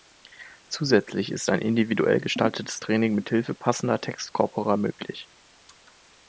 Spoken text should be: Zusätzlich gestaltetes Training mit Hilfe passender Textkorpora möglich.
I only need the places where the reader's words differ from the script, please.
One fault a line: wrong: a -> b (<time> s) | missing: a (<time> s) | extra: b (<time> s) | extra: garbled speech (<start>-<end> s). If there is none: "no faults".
extra: ist ein individuell (1.3 s)